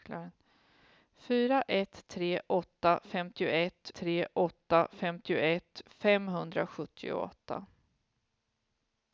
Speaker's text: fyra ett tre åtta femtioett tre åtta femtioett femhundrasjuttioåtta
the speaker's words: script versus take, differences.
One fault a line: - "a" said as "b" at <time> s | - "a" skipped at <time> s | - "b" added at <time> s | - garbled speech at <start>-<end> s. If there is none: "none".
none